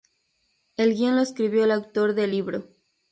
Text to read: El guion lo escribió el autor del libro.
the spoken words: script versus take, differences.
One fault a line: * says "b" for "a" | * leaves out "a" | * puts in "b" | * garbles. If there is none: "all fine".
all fine